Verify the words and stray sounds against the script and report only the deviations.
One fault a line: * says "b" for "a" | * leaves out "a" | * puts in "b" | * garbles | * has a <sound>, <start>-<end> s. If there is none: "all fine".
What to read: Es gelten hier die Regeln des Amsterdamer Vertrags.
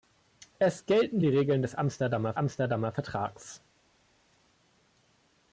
* leaves out "hier"
* puts in "Amsterdamer"